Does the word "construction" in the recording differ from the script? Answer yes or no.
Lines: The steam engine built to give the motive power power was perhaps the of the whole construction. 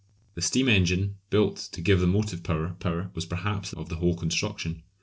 no